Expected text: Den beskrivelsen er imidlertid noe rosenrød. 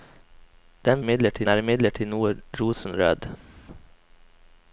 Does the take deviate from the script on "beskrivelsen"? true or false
true